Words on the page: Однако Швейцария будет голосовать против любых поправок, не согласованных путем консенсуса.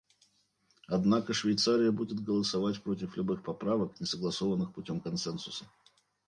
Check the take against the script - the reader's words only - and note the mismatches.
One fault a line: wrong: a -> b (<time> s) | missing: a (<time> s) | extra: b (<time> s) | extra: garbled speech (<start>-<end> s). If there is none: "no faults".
no faults